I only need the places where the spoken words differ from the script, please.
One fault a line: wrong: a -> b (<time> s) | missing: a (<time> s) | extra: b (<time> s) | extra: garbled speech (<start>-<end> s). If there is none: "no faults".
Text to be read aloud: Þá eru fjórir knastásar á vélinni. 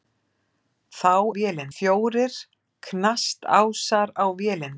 wrong: eru -> vélinni (1.4 s)